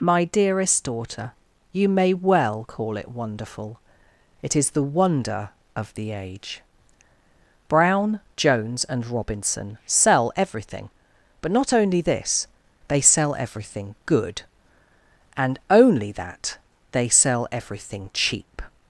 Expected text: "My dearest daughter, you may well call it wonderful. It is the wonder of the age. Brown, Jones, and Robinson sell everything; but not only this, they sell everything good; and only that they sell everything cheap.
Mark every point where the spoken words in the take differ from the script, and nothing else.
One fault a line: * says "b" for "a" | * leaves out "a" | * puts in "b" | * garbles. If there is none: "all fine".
all fine